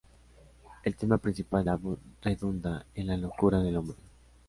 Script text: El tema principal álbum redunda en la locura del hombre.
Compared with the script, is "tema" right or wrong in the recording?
right